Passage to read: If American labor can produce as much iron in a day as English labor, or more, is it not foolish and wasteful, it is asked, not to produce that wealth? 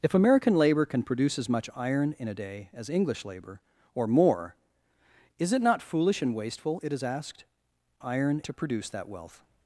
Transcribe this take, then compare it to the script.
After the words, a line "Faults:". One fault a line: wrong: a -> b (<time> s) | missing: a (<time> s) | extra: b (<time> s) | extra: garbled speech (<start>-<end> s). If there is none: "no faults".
If American labor can produce as much iron in a day as English labor, or more, is it not foolish and wasteful, it is asked, iron to produce that wealth?
Faults:
wrong: not -> iron (8.0 s)